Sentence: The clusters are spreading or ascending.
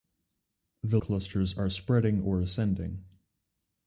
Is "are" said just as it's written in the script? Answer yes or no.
yes